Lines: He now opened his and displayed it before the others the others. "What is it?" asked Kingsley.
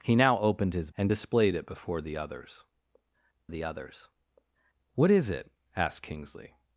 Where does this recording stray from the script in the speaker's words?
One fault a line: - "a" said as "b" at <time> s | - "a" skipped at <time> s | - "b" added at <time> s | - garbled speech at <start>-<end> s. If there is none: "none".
none